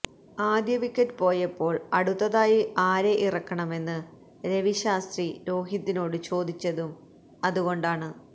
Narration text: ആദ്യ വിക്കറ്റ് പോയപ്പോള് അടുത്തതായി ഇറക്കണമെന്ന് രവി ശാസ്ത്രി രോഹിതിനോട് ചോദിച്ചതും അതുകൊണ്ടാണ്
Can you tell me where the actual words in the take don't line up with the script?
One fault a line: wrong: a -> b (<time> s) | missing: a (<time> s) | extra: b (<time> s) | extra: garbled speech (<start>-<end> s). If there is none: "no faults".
extra: ആരെ (2.9 s)